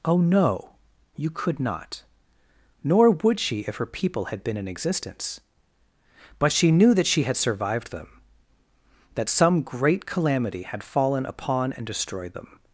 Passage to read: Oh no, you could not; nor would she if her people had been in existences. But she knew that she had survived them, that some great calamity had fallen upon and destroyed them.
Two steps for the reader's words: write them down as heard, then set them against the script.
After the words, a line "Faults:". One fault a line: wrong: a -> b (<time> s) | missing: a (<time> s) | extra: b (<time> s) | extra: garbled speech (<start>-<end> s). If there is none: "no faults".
Oh no, you could not; nor would she if her people had been in existence. But she knew that she had survived them, that some great calamity had fallen upon and destroyed them.
Faults:
wrong: existences -> existence (4.7 s)